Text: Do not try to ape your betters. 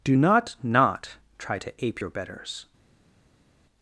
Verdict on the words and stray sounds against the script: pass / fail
fail